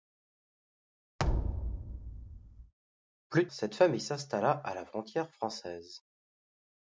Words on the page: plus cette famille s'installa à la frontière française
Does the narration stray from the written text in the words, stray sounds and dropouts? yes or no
yes